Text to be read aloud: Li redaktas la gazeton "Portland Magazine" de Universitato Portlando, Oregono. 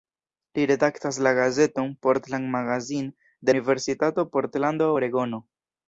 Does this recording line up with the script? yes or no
yes